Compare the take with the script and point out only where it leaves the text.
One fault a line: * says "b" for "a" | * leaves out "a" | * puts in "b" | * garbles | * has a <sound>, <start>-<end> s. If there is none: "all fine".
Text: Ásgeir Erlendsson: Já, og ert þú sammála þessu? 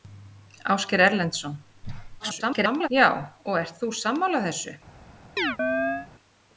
* garbles
* has a chirp, 5.4-6.1 s